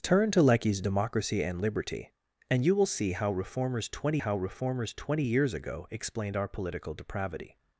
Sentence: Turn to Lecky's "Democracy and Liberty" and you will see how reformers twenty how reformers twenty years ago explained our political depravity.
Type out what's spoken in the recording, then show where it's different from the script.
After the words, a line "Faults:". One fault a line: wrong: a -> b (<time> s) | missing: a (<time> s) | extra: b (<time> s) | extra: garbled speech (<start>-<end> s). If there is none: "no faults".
Turn to Lecky's "Democracy and Liberty" and you will see how reformers twenty how reformers twenty years ago explained our political depravity.
Faults:
no faults